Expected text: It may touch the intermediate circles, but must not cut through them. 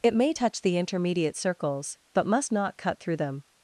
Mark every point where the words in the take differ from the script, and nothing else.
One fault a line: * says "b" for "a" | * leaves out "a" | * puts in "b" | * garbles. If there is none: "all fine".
all fine